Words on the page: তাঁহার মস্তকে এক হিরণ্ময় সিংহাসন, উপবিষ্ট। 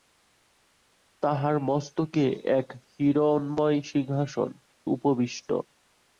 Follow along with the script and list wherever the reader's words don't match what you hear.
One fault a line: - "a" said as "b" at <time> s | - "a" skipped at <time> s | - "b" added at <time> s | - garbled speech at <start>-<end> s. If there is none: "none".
none